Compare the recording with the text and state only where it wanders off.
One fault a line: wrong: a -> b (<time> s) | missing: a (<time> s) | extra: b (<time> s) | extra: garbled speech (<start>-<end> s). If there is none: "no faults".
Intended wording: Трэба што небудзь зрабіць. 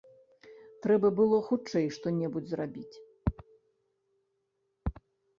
extra: было хутчэй (1.2 s)